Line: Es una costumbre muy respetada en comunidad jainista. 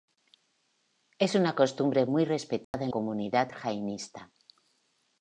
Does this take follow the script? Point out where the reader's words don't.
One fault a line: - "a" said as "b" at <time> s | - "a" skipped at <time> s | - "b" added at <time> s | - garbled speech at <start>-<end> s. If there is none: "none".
none